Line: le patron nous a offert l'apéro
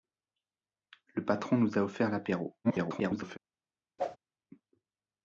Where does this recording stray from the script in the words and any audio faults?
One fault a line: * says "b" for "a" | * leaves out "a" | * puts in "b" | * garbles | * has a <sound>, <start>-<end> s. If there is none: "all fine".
* garbles
* has a whoosh, 4.0-4.2 s